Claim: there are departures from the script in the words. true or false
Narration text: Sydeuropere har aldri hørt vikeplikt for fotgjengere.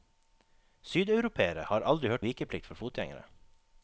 false